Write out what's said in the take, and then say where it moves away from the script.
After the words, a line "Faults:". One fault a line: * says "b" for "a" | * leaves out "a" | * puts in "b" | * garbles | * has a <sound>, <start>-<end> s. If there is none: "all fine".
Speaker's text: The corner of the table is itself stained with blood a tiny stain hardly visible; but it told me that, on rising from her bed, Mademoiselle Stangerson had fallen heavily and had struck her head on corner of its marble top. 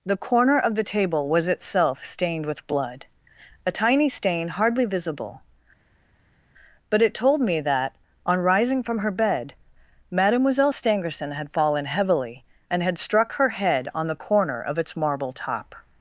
The corner of the table was itself stained with blood a tiny stain hardly visible; but it told me that, on rising from her bed, Mademoiselle Stangerson had fallen heavily and had struck her head on the corner of its marble top.
Faults:
* says "was" for "is"
* puts in "the"